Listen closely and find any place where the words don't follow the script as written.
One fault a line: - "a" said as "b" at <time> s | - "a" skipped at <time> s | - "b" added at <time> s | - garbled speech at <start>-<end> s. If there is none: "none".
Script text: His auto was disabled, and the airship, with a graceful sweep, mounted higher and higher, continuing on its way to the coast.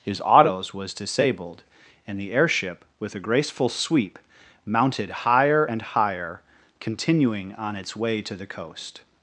- "auto" said as "autos" at 0.2 s